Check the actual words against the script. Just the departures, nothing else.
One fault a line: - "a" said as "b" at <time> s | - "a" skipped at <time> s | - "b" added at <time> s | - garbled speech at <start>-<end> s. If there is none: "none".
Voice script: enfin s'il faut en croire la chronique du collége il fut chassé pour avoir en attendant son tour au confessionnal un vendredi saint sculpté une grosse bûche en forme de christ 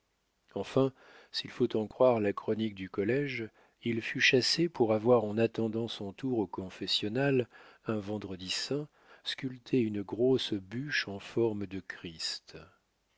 none